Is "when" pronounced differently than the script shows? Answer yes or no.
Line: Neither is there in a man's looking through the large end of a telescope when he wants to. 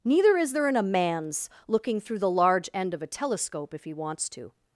yes